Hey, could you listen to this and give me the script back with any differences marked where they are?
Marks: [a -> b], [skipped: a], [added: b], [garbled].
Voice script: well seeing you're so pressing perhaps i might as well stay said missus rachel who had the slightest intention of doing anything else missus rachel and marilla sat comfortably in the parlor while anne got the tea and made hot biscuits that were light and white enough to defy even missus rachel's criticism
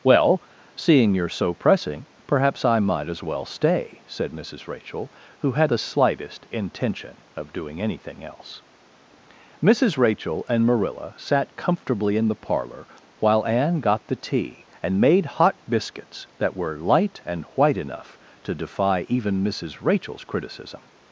well seeing you're so pressing perhaps i might as well stay said missus rachel who had the slightest intention of doing anything else missus rachel and marilla sat comfortably in the parlor while anne got the tea and made hot biscuits that were light and white enough to defy even missus rachel's criticism